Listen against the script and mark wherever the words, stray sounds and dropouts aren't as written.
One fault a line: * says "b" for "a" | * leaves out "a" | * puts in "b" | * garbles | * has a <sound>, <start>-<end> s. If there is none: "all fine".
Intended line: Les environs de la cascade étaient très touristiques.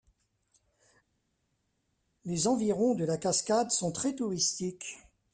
* says "sont" for "étaient"